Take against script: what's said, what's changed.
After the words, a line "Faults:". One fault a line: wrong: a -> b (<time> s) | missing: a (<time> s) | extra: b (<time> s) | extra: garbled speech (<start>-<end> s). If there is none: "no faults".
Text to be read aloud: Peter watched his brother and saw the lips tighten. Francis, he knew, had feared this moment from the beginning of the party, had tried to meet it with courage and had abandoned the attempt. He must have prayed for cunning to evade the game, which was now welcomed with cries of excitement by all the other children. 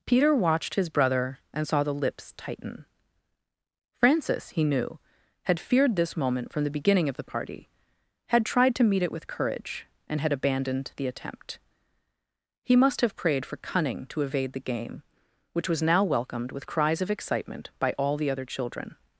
Peter watched his brother and saw the lips tighten. Francis, he knew, had feared this moment from the beginning of the party, had tried to meet it with courage and had abandoned the attempt. He must have prayed for cunning to evade the game, which was now welcomed with cries of excitement by all the other children.
Faults:
no faults